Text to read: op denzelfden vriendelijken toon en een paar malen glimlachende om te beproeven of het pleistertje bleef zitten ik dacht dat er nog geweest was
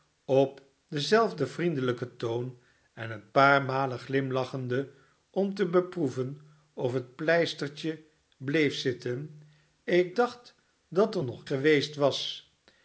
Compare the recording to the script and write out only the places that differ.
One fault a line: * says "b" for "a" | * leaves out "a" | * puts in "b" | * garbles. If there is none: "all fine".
all fine